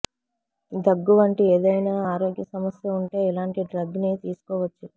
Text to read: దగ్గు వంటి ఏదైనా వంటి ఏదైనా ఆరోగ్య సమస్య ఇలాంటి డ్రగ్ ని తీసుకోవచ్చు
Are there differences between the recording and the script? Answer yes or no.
yes